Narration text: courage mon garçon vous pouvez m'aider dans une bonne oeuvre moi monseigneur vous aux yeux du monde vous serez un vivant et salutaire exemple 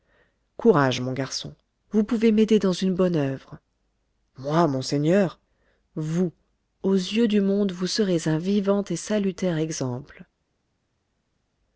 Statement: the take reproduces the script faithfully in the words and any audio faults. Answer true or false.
true